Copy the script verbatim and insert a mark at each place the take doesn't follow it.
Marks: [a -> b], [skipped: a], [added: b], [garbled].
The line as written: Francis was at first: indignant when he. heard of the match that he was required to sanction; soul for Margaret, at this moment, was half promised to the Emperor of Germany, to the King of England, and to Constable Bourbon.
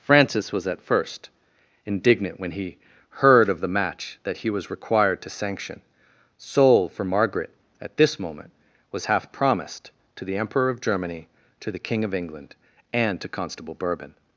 Francis was at first: indignant when he. heard of the match that he was required to sanction; soul for Margaret, at this moment, was half promised to the Emperor of Germany, to the King of England, and to Constable Bourbon.